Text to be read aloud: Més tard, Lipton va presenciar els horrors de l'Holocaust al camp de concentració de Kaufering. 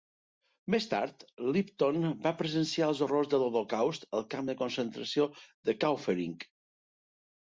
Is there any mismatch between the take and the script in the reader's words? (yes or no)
no